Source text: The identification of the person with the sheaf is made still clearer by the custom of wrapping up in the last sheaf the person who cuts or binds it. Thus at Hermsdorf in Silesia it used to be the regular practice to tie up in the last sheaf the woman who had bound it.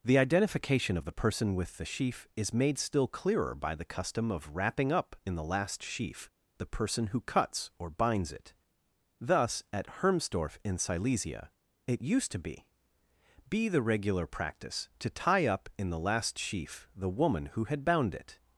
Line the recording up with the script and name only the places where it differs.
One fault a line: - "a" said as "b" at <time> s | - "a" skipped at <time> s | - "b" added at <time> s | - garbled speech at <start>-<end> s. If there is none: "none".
- "be" added at 13.5 s